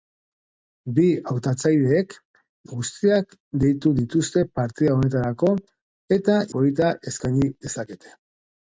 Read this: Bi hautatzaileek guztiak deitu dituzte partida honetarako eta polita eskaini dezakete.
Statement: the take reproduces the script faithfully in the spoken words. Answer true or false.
true